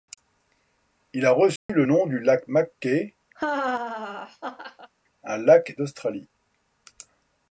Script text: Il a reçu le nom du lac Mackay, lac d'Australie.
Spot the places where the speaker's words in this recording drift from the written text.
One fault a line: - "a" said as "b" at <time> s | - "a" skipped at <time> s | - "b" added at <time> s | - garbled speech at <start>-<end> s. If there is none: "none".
- "un" added at 5.2 s